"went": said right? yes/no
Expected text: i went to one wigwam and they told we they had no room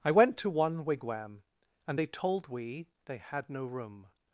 yes